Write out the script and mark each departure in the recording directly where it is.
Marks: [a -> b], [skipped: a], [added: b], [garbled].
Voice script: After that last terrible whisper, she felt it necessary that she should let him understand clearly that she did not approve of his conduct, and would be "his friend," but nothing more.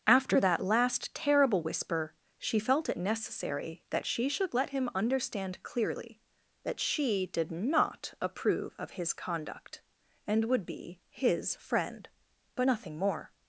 After that last terrible whisper, she felt it necessary that she should let him understand clearly that she did not approve of his conduct, and would be "his friend," but nothing more.